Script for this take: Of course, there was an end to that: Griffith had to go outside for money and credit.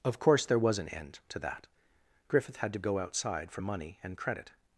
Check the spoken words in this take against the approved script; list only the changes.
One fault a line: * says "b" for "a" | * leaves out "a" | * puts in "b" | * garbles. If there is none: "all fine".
all fine